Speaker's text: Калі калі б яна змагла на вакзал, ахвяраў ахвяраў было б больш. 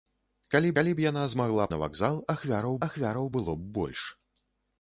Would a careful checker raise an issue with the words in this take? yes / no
no